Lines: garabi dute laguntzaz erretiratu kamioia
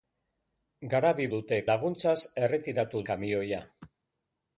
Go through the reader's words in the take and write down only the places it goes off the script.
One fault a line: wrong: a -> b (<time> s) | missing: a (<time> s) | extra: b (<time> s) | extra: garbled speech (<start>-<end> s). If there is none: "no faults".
no faults